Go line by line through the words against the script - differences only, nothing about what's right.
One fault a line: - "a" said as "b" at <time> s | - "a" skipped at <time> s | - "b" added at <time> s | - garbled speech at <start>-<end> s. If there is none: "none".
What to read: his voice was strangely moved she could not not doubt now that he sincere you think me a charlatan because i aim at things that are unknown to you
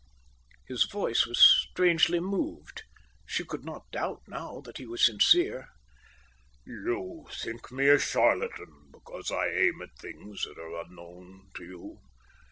- "not" skipped at 3.9 s
- "was" added at 4.9 s